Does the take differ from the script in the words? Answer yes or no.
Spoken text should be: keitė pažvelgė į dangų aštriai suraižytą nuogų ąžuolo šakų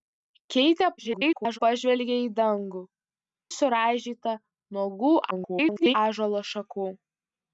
yes